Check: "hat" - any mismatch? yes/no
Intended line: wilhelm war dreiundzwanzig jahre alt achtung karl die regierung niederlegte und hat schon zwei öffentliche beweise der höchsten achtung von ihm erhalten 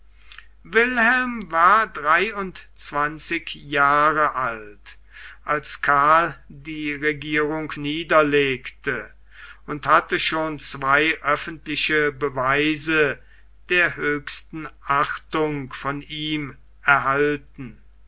yes